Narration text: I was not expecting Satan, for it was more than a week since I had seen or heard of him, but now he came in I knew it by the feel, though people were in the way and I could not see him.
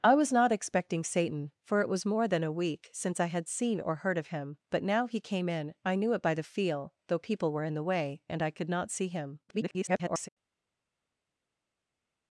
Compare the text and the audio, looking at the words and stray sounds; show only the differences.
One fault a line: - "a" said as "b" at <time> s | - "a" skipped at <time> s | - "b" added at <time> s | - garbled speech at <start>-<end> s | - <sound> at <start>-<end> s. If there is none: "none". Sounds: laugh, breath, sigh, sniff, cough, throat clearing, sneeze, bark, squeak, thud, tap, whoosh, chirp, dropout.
- garbled speech at 9.5-10.3 s